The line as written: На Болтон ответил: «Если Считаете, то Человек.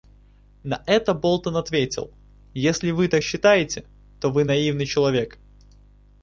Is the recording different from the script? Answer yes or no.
yes